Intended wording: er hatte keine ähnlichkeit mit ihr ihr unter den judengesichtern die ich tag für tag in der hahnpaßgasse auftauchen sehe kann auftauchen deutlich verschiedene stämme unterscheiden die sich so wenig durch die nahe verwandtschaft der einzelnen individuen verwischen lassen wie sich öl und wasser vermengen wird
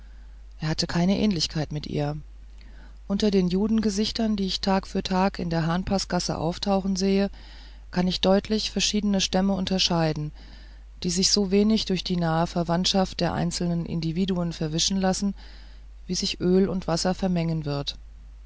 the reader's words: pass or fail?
fail